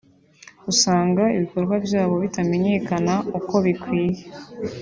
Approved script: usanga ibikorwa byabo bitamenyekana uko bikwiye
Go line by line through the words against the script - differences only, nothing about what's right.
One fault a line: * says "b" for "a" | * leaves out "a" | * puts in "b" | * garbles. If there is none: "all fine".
all fine